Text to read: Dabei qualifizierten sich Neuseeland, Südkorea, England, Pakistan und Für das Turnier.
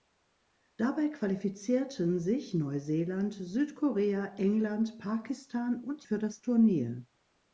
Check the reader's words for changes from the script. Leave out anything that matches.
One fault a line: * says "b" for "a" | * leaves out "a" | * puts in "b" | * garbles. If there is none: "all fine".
all fine